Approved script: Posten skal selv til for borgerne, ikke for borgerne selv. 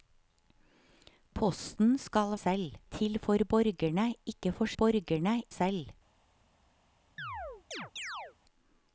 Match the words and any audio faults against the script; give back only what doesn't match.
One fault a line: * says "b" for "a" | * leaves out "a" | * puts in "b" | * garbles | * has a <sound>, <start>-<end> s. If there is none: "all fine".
* has a chirp, 7.2-8.4 s